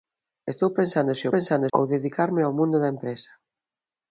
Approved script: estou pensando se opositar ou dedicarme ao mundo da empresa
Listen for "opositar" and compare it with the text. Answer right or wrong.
wrong